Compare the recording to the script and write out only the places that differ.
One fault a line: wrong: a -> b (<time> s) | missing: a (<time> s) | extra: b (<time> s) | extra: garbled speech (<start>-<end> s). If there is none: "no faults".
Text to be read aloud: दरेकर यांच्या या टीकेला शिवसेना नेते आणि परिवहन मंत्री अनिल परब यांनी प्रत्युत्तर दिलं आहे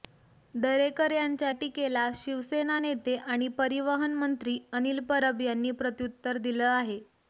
missing: या (1.5 s)